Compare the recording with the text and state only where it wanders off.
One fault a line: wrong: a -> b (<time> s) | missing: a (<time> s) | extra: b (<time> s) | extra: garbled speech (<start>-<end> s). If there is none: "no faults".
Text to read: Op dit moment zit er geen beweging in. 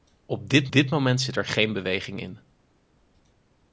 extra: dit (0.7 s)